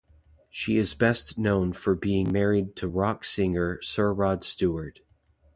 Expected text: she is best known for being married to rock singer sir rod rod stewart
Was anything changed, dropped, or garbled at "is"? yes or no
no